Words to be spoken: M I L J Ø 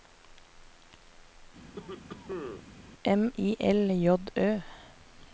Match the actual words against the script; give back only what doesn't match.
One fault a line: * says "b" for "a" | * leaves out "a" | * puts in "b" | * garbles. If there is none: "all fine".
all fine